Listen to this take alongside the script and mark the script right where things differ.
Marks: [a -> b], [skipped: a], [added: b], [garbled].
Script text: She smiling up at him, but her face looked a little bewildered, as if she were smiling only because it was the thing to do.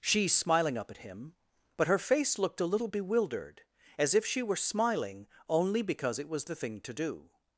She smiling up at him, but her face looked a little bewildered, as if she were smiling only because it was the thing to do.